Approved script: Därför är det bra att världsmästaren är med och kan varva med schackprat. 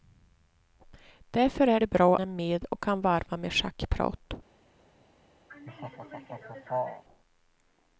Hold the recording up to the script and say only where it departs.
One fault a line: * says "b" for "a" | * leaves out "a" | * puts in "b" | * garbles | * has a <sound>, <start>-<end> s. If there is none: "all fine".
* leaves out "att världsmästaren"
* has a laugh, 5.5-7.0 s